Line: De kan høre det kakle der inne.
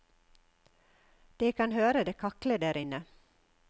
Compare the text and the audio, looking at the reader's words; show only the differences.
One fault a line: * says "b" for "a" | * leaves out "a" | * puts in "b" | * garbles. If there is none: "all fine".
all fine